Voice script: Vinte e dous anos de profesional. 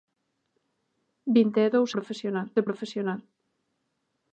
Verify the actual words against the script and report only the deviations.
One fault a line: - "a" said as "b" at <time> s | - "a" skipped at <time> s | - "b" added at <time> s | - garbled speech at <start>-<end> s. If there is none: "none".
- "anos" said as "profesional" at 1.9 s